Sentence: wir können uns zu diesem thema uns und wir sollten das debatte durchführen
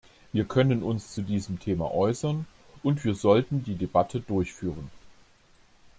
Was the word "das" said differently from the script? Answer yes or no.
yes